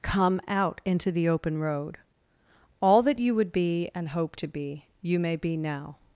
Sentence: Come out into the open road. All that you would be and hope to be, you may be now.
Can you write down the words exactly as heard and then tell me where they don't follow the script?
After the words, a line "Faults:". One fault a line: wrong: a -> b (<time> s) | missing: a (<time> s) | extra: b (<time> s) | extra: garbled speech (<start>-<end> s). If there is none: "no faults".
Come out into the open road. All that you would be and hope to be, you may be now.
Faults:
no faults